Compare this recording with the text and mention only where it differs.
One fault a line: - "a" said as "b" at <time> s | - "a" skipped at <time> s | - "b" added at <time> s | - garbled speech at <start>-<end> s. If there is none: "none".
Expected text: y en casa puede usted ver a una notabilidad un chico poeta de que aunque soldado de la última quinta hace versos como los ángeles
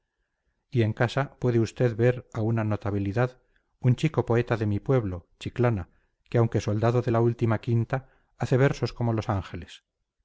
- "mi pueblo chiclana" added at 4.7 s